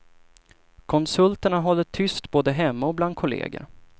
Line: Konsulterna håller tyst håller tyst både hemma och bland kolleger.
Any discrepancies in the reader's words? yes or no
yes